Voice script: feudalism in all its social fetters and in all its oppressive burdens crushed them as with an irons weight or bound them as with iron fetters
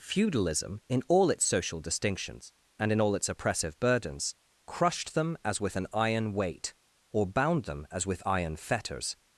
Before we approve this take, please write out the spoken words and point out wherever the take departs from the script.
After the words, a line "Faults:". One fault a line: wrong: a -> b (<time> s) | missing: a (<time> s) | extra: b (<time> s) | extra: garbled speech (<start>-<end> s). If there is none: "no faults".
feudalism in all its social distinctions and in all its oppressive burdens crushed them as with an iron weight or bound them as with iron fetters
Faults:
wrong: fetters -> distinctions (1.8 s)
wrong: irons -> iron (5.9 s)